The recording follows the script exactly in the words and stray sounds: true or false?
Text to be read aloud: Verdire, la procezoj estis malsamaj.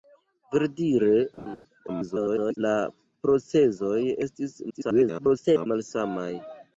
false